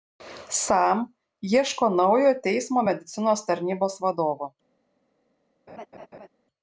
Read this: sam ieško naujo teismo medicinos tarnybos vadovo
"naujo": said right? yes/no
yes